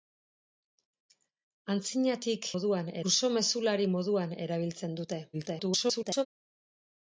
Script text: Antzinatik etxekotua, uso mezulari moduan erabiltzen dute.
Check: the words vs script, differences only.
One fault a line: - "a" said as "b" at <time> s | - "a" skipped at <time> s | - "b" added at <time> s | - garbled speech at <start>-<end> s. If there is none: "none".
- "etxekotua" said as "moduan" at 2.5 s
- garbled speech at 5.3-6.3 s